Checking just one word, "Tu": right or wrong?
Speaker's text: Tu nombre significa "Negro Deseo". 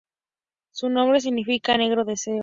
wrong